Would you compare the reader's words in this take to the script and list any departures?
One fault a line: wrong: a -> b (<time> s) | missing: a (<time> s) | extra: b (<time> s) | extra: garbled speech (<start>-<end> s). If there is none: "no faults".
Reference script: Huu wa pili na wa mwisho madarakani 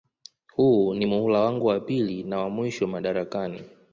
extra: ni muhula wangu (0.9 s)